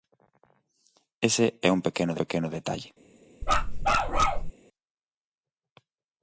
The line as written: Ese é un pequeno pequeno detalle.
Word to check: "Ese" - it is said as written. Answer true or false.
true